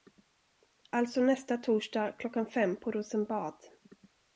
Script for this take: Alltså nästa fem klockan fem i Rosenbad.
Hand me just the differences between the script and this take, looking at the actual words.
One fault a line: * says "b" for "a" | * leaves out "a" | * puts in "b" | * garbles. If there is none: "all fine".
* says "torsdag" for "fem"
* says "på" for "i"